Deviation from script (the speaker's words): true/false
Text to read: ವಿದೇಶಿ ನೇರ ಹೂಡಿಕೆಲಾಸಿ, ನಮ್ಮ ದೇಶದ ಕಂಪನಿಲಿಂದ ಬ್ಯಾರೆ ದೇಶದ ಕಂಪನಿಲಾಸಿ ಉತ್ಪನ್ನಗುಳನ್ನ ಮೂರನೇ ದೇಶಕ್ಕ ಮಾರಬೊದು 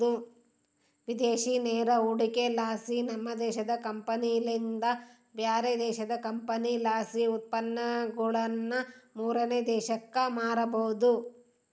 false